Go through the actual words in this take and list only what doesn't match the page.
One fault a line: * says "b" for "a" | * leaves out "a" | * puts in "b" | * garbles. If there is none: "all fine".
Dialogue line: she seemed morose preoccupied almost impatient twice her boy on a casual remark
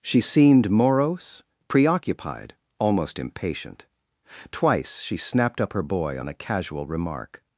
* puts in "she snapped up"